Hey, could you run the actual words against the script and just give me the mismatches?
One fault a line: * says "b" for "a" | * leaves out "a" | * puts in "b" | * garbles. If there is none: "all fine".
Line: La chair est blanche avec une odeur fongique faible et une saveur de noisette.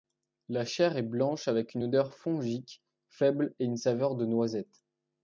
all fine